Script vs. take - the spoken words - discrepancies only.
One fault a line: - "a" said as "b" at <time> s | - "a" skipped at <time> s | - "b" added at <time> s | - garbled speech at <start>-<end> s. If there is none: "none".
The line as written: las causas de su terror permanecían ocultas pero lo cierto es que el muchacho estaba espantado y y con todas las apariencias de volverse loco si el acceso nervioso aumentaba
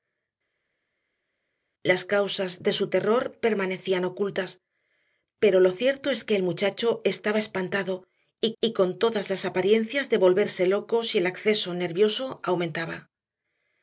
none